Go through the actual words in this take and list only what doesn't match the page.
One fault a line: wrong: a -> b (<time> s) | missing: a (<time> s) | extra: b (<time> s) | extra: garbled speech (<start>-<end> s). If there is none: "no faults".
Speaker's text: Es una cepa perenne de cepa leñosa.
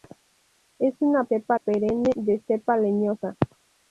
no faults